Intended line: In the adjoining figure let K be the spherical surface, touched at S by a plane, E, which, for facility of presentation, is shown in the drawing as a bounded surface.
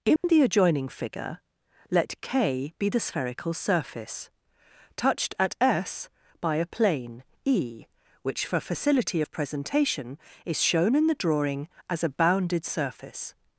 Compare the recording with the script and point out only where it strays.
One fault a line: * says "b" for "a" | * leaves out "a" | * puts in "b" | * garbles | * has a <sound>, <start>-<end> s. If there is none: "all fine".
* has a dropout, 0.2-0.2 s